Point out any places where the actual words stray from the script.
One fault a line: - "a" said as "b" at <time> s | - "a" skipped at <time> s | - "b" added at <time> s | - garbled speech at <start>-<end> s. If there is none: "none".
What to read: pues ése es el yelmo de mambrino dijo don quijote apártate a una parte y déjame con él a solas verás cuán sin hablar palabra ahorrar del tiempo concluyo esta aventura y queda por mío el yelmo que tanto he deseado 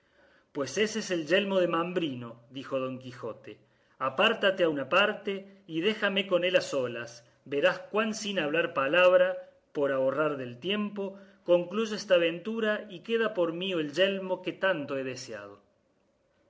- "por" added at 9.7 s